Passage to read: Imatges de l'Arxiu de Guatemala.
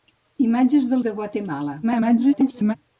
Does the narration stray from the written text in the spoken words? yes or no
yes